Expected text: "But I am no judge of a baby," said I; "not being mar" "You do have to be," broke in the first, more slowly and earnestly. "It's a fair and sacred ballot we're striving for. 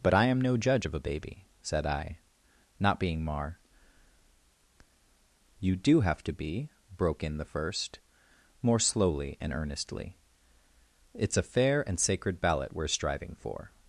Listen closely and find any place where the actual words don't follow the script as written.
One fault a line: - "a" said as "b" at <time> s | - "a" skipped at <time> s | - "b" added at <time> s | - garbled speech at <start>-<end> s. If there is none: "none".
none